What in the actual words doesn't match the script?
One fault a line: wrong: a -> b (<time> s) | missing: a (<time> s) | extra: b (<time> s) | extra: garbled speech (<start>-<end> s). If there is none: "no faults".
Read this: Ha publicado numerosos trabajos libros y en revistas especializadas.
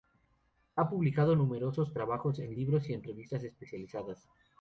extra: en (2.4 s)